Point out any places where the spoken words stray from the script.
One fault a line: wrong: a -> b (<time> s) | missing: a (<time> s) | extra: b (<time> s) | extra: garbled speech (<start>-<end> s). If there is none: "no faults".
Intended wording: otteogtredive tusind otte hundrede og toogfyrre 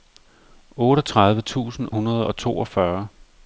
missing: otte (1.9 s)